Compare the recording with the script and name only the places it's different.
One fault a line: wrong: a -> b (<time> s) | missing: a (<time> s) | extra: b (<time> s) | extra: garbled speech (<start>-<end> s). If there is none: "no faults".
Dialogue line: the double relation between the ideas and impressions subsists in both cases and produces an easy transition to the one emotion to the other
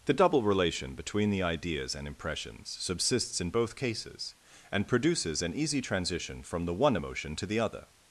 wrong: to -> from (6.4 s)